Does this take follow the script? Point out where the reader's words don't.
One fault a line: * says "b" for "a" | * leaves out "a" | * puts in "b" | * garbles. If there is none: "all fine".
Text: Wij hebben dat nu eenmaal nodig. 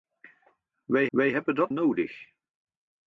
* puts in "wij"
* leaves out "nu eenmaal"